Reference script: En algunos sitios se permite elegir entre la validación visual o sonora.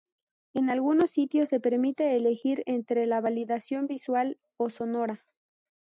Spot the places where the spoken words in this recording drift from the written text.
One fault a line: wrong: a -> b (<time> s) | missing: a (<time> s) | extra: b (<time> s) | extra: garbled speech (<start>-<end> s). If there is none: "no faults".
no faults